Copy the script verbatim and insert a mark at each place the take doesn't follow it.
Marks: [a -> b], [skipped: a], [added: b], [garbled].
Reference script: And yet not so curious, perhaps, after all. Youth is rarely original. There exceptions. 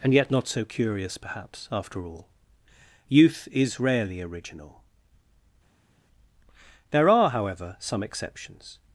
And yet not so curious, perhaps, after all. Youth is rarely original. There [added: are however some] exceptions.